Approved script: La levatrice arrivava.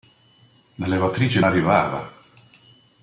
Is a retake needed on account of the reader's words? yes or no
no